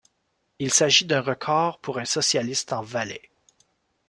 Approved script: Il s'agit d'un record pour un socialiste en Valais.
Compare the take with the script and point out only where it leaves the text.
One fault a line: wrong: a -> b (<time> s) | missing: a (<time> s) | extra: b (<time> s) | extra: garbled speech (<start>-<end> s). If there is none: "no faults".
no faults